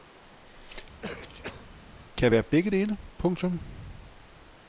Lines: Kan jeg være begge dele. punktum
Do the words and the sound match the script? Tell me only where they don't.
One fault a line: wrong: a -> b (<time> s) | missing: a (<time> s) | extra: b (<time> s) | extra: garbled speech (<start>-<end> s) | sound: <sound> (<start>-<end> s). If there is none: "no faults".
sound: sneeze (1.0-1.7 s)